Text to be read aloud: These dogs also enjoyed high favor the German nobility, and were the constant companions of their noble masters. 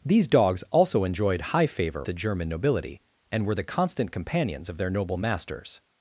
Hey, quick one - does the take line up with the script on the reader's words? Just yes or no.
yes